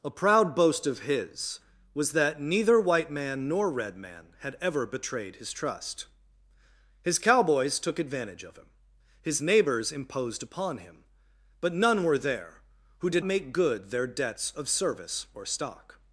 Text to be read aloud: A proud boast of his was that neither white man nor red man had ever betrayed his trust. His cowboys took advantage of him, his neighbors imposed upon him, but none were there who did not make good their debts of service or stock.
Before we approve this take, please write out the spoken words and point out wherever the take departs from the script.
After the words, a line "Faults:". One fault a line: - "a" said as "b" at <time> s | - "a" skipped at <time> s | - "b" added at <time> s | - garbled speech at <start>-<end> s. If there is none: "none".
A proud boast of his was that neither white man nor red man had ever betrayed his trust. His cowboys took advantage of him, his neighbors imposed upon him, but none were there who did make good their debts of service or stock.
Faults:
- "not" skipped at 13.2 s